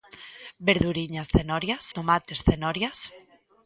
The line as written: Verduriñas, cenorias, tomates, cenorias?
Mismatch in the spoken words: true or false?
false